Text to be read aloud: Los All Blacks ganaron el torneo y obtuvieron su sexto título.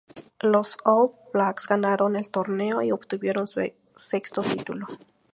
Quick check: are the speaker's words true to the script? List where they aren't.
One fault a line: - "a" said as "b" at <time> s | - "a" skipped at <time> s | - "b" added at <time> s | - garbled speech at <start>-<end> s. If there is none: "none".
none